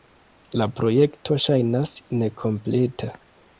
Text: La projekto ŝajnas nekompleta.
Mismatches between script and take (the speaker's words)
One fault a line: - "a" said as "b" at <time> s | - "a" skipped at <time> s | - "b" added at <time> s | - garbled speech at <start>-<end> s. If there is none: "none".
none